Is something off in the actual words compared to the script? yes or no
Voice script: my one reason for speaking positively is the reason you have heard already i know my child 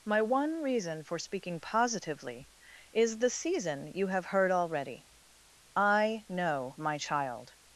yes